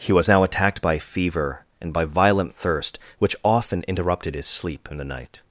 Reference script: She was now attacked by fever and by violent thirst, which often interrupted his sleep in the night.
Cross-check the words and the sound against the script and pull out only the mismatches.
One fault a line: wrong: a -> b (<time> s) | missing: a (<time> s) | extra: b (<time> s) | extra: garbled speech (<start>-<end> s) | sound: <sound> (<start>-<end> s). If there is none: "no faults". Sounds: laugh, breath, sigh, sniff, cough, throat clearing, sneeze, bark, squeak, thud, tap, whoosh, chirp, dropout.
wrong: She -> He (0.0 s)